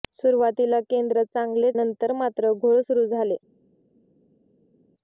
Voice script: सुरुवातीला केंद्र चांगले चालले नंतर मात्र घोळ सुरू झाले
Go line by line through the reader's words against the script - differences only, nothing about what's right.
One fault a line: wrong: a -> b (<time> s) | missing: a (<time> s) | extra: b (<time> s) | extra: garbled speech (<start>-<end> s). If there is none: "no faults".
missing: चालले (1.7 s)